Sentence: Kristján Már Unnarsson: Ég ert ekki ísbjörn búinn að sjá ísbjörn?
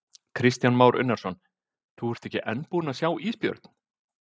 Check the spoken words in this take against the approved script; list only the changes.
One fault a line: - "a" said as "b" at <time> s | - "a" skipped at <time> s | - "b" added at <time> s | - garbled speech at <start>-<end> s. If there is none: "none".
- "Ég" said as "Þú" at 2.0 s
- "ísbjörn" said as "enn" at 2.5 s